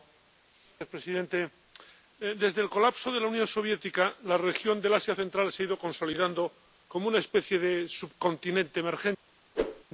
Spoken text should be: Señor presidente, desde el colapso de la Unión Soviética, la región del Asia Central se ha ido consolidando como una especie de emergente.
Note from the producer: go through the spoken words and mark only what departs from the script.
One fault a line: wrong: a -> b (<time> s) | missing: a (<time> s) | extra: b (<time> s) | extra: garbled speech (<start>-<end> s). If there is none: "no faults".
extra: subcontinente (7.9 s)